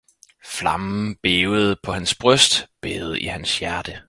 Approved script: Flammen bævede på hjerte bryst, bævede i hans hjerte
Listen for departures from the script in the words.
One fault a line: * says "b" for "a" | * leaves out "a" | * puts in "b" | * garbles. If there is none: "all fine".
* says "hans" for "hjerte"